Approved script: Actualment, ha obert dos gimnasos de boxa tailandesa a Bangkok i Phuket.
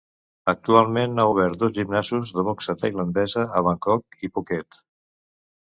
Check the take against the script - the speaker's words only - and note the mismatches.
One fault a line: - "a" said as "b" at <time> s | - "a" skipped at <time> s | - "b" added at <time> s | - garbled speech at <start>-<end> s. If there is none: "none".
none